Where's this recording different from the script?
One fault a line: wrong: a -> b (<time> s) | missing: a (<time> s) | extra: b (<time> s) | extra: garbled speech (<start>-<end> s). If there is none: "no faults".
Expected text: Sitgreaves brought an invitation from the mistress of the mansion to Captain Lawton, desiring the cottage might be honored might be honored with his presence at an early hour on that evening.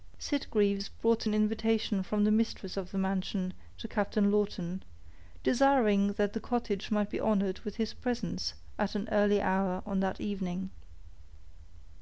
extra: that (6.1 s)
missing: might be honored (7.6 s)